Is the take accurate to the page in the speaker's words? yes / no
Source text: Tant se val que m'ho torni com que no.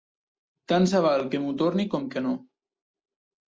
yes